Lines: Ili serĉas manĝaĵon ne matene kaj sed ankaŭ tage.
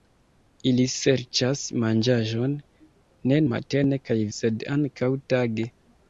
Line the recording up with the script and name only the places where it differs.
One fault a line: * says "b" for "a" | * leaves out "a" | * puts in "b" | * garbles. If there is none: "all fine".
all fine